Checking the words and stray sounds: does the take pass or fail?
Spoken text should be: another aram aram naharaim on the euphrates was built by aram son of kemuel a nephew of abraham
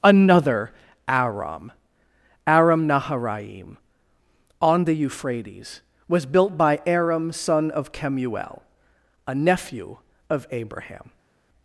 pass